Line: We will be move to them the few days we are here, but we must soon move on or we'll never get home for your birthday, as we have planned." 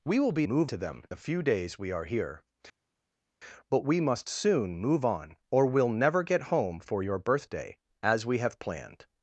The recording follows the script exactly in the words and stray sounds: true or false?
true